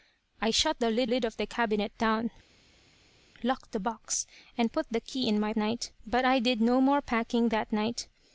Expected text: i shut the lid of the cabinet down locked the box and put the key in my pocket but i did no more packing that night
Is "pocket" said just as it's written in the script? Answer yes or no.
no